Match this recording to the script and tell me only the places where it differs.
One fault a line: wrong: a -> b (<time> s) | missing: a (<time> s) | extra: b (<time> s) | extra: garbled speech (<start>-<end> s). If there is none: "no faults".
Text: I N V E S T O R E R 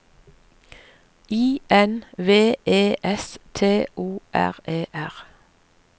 no faults